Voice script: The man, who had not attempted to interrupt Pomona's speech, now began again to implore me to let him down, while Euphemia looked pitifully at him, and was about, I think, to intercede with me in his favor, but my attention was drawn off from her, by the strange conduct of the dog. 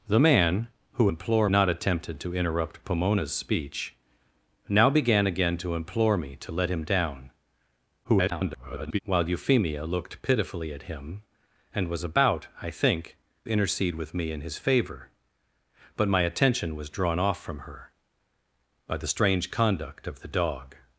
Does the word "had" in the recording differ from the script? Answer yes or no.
yes